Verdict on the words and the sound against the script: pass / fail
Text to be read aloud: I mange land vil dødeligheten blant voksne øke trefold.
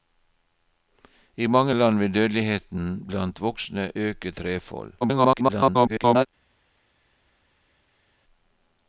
fail